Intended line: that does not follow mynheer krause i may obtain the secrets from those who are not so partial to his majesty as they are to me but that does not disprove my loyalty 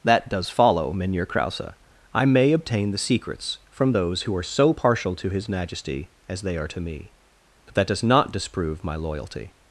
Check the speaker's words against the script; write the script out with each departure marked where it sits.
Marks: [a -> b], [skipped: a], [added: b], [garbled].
that does [skipped: not] follow mynheer krause i may obtain the secrets from those who are [skipped: not] so partial to his majesty as they are to me but that does not disprove my loyalty